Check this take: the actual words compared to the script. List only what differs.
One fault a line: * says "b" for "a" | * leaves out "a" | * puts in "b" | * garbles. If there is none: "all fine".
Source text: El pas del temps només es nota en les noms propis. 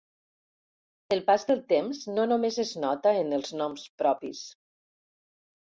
* puts in "no"
* says "els" for "les"